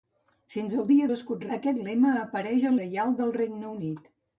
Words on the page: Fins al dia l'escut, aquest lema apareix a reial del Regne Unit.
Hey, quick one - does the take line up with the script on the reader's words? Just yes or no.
yes